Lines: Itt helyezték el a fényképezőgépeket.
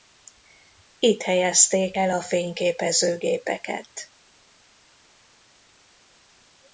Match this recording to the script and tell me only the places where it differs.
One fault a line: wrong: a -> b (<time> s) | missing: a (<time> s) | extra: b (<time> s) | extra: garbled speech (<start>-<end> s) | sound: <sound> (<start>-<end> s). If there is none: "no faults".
no faults